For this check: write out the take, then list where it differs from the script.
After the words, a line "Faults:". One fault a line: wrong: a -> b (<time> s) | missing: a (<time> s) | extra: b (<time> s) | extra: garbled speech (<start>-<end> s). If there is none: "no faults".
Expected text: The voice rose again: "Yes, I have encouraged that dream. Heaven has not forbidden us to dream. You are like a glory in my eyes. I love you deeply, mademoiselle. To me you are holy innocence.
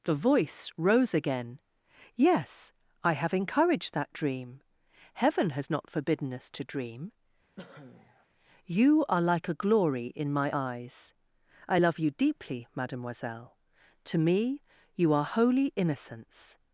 The voice rose again: "Yes, I have encouraged that dream. Heaven has not forbidden us to dream. You are like a glory in my eyes. I love you deeply, mademoiselle. To me you are holy innocence.
Faults:
no faults